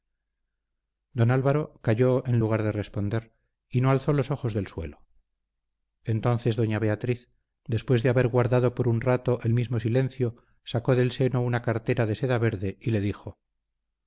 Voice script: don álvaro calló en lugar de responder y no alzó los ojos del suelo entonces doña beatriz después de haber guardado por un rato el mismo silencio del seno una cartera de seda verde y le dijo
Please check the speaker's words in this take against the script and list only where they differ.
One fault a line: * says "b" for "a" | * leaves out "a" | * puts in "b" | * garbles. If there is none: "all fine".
* puts in "sacó"